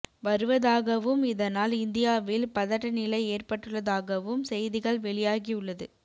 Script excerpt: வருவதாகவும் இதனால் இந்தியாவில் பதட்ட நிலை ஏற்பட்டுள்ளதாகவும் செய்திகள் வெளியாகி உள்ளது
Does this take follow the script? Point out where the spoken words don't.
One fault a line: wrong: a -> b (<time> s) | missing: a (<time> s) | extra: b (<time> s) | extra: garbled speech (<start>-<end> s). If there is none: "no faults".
no faults